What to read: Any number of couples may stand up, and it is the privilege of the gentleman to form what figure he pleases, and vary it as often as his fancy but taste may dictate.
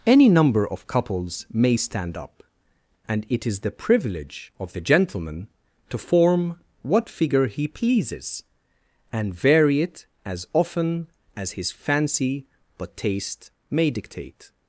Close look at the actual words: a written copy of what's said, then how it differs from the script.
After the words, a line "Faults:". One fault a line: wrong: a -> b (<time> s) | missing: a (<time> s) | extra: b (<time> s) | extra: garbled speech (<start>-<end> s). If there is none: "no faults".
Any number of couples may stand up, and it is the privilege of the gentleman to form what figure he pleases, and vary it as often as his fancy but taste may dictate.
Faults:
no faults